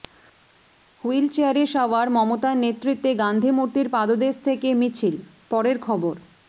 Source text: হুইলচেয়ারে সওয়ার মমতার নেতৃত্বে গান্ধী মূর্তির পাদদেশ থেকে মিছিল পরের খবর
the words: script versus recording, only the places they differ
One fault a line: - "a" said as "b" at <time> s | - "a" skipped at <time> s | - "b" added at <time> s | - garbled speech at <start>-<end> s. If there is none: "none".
none